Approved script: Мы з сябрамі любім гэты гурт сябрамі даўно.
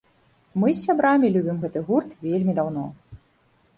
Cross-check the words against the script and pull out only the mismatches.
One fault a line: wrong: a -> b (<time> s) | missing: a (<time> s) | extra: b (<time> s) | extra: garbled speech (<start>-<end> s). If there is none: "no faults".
wrong: сябрамі -> вельмі (2.3 s)